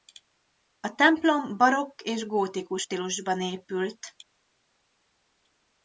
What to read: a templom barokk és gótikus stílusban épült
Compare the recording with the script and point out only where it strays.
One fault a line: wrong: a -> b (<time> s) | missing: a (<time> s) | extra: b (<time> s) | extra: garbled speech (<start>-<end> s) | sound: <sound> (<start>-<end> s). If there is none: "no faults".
no faults